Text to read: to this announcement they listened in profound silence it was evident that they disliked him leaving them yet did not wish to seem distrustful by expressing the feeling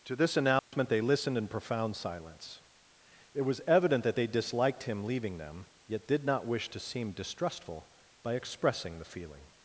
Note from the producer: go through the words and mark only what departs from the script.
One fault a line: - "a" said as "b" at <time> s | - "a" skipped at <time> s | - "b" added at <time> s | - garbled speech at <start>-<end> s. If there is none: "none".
none